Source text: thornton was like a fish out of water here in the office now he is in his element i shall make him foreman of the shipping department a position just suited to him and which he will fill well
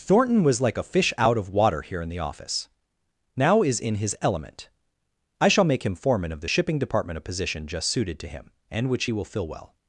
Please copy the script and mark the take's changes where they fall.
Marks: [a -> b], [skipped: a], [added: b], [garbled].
thornton was like a fish out of water here in the office now [skipped: he] is in his element i shall make him foreman of the shipping department a position just suited to him and which he will fill well